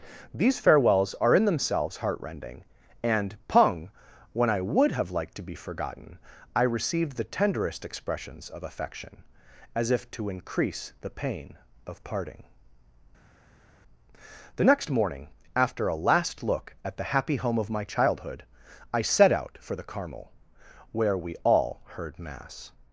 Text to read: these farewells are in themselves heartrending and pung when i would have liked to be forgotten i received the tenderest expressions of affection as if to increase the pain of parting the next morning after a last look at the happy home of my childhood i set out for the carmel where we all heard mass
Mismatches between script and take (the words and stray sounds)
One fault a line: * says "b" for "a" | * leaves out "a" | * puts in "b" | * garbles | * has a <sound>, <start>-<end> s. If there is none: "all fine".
all fine